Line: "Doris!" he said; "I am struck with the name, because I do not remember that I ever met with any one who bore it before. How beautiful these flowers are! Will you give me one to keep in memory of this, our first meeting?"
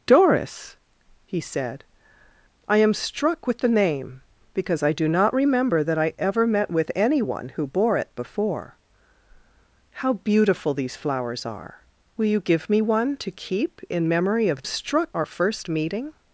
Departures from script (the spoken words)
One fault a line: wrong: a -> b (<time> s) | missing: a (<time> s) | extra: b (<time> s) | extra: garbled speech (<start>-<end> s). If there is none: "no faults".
wrong: this -> struck (14.6 s)